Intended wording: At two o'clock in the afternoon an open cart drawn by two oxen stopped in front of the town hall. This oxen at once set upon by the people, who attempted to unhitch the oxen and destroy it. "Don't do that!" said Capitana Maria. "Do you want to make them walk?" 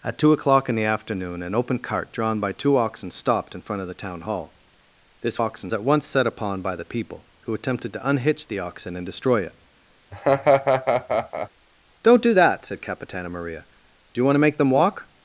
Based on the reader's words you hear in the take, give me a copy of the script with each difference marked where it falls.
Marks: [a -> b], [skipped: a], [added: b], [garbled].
At two o'clock in the afternoon an open cart drawn by two oxen stopped in front of the town hall. This oxen at once set upon by the people, who attempted to unhitch the oxen and destroy it. "Don't do that!" said Capitana Maria. "Do you want to make them walk?"